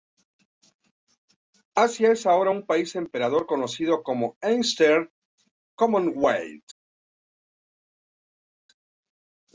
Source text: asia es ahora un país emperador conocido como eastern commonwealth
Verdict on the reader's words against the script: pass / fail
pass